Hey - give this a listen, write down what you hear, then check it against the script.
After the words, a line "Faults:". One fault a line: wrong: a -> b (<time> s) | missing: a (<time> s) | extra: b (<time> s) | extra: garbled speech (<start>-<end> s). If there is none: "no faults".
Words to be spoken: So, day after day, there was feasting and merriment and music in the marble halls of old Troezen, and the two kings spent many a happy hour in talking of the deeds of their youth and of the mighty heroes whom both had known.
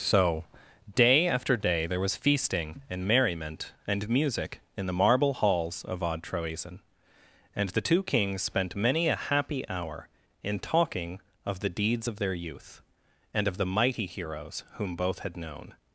So, day after day, there was feasting and merriment and music in the marble halls of odd Troezen, and the two kings spent many a happy hour in talking of the deeds of their youth and of the mighty heroes whom both had known.
Faults:
wrong: old -> odd (6.0 s)